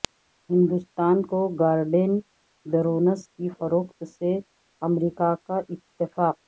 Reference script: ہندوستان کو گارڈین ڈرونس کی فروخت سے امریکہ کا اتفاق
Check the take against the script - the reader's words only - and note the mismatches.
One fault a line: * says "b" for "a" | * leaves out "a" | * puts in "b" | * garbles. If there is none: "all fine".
all fine